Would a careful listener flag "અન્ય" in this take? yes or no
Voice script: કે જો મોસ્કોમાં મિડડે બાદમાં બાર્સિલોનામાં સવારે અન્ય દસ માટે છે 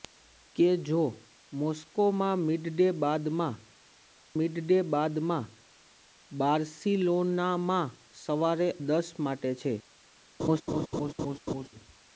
yes